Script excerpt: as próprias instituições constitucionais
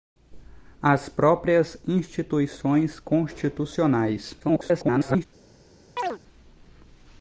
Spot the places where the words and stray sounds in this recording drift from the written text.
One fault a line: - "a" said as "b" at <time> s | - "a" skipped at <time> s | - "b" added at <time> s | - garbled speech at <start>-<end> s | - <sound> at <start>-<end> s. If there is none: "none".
- garbled speech at 4.4-5.3 s
- chirp at 6.0-6.2 s